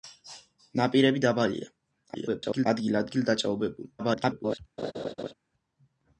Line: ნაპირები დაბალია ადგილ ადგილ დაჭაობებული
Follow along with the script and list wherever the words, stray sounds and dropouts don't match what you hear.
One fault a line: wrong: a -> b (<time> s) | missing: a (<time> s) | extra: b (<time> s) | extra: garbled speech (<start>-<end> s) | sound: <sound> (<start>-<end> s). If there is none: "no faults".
extra: garbled speech (2.1-2.7 s)
extra: garbled speech (4.0-4.6 s)
sound: laugh (4.8-5.3 s)